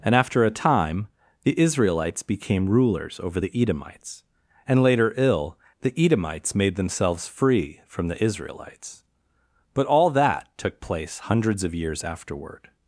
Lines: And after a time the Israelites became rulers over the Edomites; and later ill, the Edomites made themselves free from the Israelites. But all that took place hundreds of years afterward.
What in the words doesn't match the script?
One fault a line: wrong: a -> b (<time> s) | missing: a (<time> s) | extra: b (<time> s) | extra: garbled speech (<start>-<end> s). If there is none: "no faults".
no faults